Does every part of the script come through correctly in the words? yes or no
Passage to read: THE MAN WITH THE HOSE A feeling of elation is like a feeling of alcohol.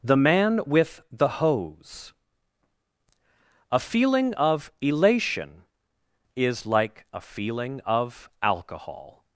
yes